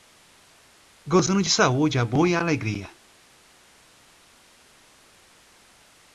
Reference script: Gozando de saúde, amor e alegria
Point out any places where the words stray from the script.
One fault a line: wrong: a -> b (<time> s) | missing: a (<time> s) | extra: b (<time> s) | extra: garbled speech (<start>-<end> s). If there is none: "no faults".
no faults